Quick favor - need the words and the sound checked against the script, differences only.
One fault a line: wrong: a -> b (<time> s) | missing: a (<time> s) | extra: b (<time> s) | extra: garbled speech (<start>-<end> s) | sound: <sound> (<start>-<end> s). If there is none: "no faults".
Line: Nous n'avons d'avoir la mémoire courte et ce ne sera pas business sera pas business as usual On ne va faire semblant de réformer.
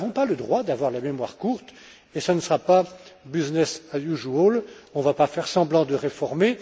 extra: pas le droit (0.1 s)
missing: sera pas business (3.8 s)
extra: pas (5.1 s)